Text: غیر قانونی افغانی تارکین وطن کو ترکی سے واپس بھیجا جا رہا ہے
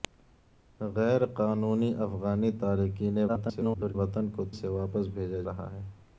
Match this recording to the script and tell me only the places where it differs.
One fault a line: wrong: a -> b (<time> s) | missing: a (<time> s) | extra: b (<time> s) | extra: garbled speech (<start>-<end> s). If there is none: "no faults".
extra: garbled speech (3.3-4.0 s)
missing: ترکی (4.4 s)
missing: جا (5.4 s)